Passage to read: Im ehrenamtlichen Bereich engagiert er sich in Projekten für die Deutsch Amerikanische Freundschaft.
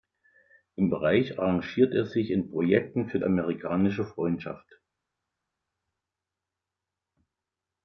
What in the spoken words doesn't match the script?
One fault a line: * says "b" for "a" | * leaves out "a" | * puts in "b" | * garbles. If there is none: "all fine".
* leaves out "ehrenamtlichen"
* leaves out "die Deutsch"